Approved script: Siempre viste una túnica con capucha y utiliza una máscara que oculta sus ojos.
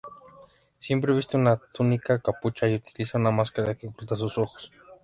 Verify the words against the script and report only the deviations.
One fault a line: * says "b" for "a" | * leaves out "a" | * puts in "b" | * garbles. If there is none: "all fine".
* leaves out "con"